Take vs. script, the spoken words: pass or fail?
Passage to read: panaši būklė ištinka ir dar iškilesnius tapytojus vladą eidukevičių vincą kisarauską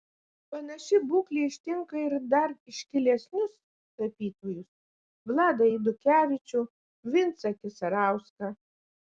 pass